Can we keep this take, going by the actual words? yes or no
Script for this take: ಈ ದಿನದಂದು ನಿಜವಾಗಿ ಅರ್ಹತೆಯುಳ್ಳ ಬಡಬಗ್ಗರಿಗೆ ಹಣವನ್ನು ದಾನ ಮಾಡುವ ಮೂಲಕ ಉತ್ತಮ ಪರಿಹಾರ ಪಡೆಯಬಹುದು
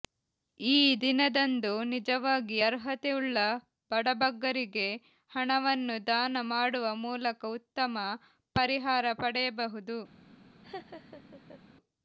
yes